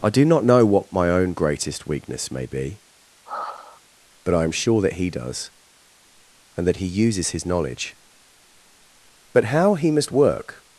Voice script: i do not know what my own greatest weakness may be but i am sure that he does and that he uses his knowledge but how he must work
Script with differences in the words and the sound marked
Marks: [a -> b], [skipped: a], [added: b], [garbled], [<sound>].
i do not know what my own greatest weakness may be [sigh] but i am sure that he does and that he uses his knowledge but how he must work